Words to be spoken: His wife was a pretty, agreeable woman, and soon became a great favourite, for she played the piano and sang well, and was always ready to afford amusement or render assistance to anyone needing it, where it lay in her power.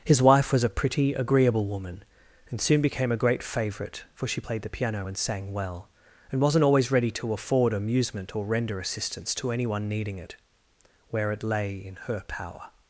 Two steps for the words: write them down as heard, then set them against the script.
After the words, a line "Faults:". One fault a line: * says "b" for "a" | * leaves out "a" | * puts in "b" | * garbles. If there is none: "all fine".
His wife was a pretty, agreeable woman, and soon became a great favourite, for she played the piano and sang well, and wasn't always ready to afford amusement or render assistance to anyone needing it, where it lay in her power.
Faults:
* says "wasn't" for "was"